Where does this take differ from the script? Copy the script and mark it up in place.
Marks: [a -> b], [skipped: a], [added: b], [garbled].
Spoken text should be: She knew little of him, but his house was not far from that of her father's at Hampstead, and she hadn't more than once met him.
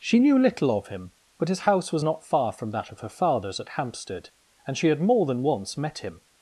She knew little of him, but his house was not far from that of her father's at Hampstead, and she [hadn't -> had] more than once met him.